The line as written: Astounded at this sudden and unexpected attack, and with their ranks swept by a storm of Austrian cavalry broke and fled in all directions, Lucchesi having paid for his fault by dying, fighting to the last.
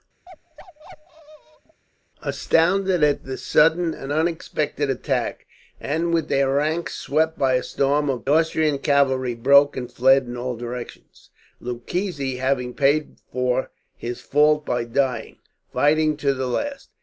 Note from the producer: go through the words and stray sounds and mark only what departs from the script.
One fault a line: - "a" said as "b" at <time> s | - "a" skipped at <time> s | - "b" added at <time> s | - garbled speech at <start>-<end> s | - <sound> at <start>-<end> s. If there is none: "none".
- bark at 0.3-1.8 s